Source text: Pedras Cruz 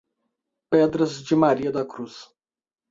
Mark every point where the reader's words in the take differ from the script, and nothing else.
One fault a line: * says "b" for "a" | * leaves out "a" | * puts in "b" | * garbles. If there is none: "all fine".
* puts in "de Maria da"